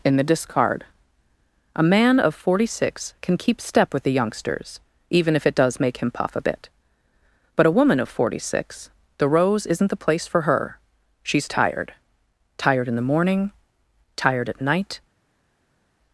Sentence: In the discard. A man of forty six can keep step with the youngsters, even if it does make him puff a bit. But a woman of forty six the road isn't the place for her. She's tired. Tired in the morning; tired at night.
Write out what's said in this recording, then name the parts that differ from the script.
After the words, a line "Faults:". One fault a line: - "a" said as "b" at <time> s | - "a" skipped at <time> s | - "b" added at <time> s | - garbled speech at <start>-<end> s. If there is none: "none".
In the discard. A man of forty six can keep step with the youngsters, even if it does make him puff a bit. But a woman of forty six the rose isn't the place for her. She's tired. Tired in the morning; tired at night.
Faults:
- "road" said as "rose" at 9.3 s